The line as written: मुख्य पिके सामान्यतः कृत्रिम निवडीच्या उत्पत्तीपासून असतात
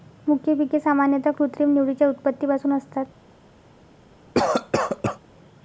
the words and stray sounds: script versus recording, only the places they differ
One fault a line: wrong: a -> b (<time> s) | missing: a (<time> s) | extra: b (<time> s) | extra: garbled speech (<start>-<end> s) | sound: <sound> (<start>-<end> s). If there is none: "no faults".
sound: cough (4.3-5.2 s)